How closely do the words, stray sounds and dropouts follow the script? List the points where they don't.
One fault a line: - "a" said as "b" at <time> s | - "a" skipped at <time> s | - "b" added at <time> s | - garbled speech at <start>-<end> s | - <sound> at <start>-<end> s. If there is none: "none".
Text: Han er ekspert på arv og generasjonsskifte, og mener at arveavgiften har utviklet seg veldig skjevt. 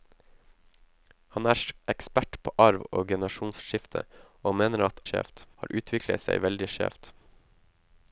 - "arveavgiften" said as "skjevt" at 5.1 s